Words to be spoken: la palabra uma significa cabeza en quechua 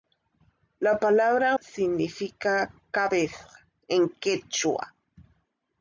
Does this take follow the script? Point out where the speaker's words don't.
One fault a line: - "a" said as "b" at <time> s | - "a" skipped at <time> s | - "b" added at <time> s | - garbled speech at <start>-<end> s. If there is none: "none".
- "uma" skipped at 1.6 s